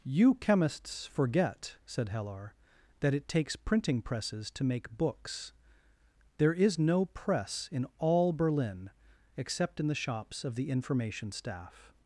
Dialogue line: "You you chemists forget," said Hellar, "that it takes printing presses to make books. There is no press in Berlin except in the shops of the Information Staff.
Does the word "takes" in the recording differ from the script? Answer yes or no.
no